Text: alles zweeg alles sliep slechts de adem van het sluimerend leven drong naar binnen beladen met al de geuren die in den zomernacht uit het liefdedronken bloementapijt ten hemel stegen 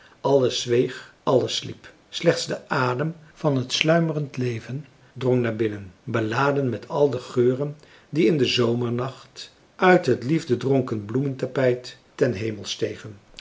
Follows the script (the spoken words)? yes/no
yes